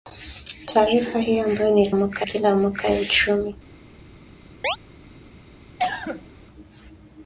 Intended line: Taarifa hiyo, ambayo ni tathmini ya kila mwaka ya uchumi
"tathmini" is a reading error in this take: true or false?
true